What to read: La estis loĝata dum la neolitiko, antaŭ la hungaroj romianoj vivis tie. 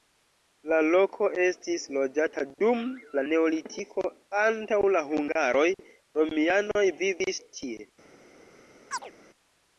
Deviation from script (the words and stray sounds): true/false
true